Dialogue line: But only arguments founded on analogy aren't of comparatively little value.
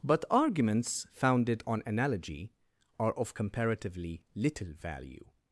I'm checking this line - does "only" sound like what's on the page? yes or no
no